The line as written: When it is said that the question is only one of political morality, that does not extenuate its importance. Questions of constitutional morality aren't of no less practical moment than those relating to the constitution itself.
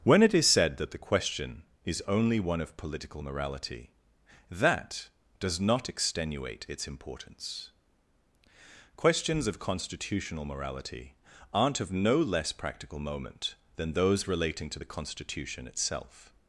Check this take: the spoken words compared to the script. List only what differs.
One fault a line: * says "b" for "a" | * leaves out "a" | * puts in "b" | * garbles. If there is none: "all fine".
all fine